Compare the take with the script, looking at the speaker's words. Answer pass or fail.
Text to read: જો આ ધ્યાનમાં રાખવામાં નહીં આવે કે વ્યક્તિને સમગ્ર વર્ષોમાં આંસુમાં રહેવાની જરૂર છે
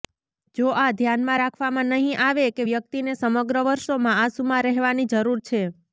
pass